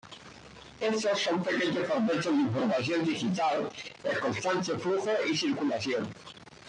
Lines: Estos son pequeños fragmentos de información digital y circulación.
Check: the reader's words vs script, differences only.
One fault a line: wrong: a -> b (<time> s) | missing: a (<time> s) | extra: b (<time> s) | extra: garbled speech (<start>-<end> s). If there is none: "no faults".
extra: en constante flujo (4.0 s)